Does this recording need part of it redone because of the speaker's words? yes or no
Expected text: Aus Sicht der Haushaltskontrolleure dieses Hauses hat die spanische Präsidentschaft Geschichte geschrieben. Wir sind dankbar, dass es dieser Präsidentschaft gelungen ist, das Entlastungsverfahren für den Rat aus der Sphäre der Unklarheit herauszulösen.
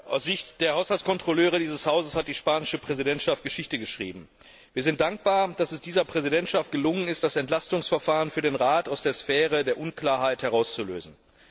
no